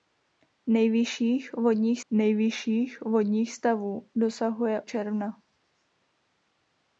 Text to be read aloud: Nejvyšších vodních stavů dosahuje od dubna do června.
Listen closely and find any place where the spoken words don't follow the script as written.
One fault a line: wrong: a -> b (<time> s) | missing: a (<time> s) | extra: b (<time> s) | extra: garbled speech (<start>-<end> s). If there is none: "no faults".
extra: nejvyšších vodních (2.1 s)
missing: od dubna do (4.8 s)